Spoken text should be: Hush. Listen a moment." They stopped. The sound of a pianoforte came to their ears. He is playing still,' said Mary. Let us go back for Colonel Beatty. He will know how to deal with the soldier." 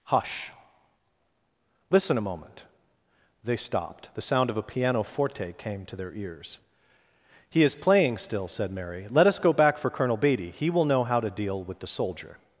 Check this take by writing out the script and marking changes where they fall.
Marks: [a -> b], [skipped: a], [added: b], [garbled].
Hush. Listen a moment." They stopped. The sound of a pianoforte came to their ears. He is playing still,' said Mary. Let us go back for Colonel Beatty. He will know how to deal with the soldier."